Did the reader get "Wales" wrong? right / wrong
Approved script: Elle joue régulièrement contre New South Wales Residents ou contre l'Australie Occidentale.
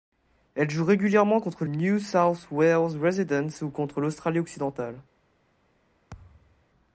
right